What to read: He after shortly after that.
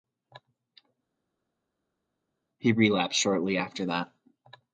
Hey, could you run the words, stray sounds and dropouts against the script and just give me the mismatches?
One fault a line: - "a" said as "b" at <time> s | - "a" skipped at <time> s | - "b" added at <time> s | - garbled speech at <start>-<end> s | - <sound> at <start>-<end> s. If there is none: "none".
- "after" said as "relapsed" at 2.7 s